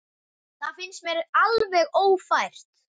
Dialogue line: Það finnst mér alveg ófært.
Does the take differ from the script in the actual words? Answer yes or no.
no